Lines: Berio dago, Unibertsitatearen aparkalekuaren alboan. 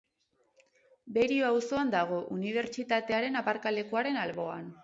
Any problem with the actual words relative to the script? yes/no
yes